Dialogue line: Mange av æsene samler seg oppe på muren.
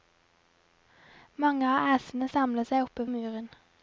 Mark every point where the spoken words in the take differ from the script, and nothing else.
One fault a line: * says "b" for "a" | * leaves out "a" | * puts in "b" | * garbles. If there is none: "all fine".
* leaves out "på"